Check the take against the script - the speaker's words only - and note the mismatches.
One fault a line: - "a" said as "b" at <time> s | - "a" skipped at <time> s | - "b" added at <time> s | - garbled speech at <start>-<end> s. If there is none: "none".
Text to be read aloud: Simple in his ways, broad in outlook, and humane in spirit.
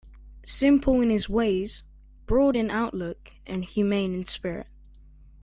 none